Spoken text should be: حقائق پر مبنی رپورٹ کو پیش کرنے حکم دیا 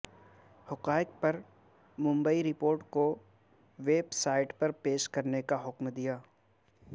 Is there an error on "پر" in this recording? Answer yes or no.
no